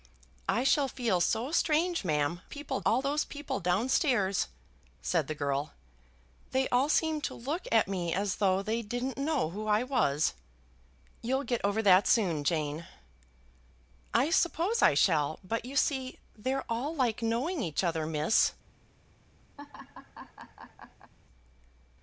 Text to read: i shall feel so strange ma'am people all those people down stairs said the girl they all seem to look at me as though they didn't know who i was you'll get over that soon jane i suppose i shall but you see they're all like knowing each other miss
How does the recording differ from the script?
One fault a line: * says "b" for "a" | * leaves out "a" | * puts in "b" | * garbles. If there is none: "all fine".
all fine